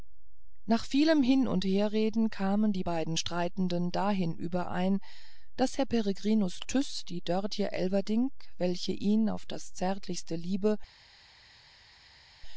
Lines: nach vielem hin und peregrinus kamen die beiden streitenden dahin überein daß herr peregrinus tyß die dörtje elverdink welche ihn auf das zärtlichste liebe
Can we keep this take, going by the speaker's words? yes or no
no